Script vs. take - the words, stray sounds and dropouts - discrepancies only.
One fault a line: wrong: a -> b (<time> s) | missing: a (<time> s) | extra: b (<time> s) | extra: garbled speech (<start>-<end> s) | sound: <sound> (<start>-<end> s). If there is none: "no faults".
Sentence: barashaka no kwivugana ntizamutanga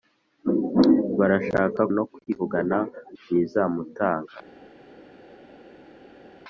no faults